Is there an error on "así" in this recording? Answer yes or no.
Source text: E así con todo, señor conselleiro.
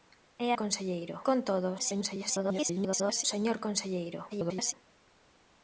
yes